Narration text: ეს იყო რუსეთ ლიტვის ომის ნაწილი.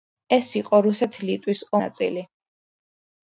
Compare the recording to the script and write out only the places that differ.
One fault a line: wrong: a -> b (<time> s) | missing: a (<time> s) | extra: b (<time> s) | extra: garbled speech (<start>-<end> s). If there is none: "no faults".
missing: ომის (1.6 s)